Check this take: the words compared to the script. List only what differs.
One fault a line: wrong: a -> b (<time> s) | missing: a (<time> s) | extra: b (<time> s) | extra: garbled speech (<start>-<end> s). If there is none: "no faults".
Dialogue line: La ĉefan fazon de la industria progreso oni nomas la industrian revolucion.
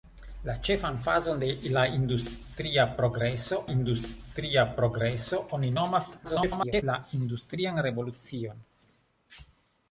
extra: industria progreso (3.7 s)
extra: garbled speech (6.2-6.8 s)